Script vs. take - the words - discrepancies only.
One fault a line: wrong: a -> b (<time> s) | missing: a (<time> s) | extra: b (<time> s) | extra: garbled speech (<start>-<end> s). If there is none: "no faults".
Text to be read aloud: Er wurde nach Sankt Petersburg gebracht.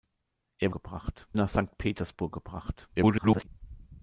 wrong: wurde -> gebracht (0.7 s)
extra: garbled speech (3.0-3.5 s)